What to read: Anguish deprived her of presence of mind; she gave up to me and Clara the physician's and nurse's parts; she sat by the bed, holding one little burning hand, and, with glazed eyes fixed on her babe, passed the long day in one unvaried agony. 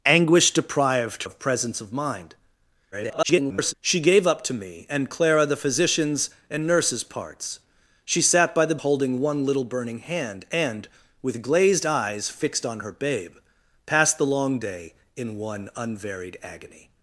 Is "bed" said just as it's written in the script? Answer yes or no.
no